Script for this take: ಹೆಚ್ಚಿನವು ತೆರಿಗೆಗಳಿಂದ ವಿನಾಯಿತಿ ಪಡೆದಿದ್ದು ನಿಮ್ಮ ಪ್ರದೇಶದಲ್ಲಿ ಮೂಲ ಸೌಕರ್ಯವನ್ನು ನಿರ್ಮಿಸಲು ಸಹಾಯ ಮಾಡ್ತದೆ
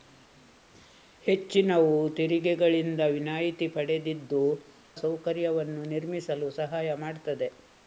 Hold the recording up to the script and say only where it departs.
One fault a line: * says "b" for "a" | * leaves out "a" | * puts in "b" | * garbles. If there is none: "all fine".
* leaves out "ನಿಮ್ಮ ಪ್ರದೇಶದಲ್ಲಿ ಮೂಲ"